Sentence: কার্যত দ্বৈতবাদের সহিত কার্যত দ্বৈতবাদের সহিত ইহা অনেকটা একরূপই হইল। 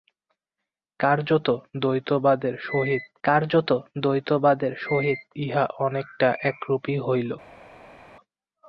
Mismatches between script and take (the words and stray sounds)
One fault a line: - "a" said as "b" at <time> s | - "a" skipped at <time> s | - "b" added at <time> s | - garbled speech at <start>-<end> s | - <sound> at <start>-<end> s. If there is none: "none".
none